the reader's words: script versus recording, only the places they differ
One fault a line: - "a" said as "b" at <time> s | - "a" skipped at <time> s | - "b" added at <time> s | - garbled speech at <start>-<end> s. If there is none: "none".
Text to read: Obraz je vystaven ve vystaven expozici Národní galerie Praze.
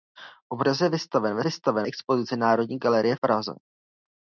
none